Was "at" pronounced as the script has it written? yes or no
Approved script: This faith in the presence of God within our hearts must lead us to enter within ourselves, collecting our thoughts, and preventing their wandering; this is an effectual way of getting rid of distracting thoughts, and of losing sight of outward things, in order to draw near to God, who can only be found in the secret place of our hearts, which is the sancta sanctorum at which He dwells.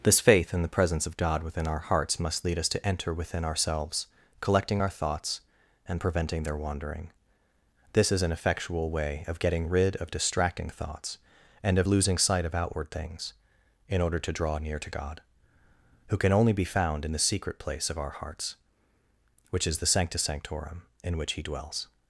no